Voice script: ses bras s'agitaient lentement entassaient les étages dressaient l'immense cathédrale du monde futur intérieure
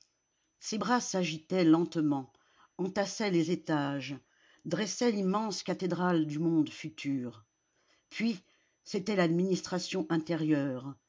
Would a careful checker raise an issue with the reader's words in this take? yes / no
yes